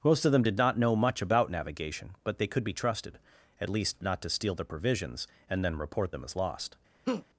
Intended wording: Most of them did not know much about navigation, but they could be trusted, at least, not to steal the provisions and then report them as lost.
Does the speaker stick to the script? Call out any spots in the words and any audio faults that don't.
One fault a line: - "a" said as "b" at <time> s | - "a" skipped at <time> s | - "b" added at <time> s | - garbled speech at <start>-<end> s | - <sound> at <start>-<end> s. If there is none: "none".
- laugh at 7.1-7.3 s